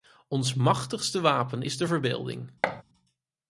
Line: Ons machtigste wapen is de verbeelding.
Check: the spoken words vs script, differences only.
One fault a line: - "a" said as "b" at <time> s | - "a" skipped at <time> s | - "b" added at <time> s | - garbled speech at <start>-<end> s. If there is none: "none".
none